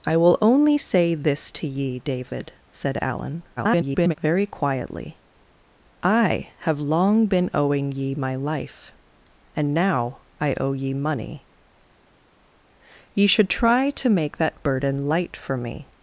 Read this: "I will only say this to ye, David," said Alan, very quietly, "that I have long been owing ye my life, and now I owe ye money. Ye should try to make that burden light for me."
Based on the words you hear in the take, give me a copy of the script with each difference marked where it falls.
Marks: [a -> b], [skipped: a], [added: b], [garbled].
"I will only say this to ye, David," said Alan, [garbled] very quietly, [skipped: "that] I have long been owing ye my life, and now I owe ye money. Ye should try to make that burden light for me."